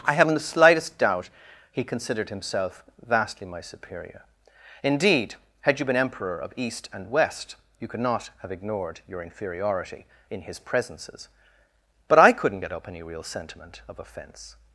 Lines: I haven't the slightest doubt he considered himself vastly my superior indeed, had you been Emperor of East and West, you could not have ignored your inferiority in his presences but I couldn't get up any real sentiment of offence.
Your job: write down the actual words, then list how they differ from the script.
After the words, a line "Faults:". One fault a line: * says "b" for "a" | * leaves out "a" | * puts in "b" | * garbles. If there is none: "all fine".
I haven't the slightest doubt he considered himself vastly my superior indeed, had you been Emperor of East and West, you could not have ignored your inferiority in his presences but I couldn't get up any real sentiment of offence.
Faults:
all fine